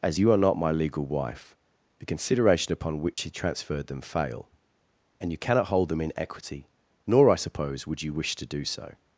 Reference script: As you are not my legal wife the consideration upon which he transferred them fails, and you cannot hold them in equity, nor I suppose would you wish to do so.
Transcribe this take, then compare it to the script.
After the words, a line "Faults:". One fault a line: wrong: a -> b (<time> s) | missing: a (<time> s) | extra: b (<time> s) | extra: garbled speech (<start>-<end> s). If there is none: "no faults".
As you are not my legal wife the consideration upon which he transferred them fail, and you cannot hold them in equity, nor I suppose would you wish to do so.
Faults:
wrong: fails -> fail (4.0 s)